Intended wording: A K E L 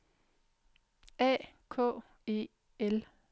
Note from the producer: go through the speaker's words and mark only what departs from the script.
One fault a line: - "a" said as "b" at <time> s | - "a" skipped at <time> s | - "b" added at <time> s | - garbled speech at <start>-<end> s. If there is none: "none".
none